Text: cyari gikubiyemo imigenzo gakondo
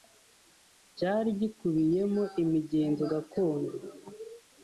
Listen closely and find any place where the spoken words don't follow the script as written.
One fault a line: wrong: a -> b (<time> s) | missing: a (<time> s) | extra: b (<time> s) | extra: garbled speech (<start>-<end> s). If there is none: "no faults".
no faults